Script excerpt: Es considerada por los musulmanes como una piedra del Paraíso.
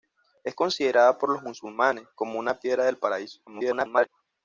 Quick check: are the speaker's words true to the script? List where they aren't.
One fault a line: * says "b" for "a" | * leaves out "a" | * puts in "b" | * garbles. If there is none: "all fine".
* garbles